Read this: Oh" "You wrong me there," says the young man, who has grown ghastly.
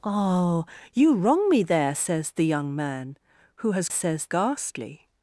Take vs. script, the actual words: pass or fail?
fail